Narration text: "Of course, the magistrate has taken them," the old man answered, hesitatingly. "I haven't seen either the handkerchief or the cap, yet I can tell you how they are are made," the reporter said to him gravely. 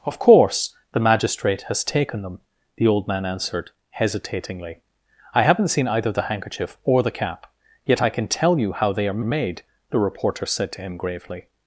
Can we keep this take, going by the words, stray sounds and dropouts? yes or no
yes